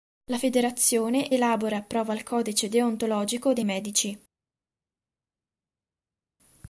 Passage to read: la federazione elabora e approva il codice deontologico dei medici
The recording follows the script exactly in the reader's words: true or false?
true